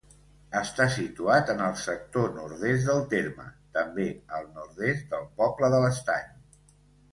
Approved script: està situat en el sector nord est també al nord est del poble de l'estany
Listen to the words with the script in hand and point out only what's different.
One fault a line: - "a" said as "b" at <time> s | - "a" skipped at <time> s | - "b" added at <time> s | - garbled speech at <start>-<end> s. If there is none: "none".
- "del terme" added at 2.9 s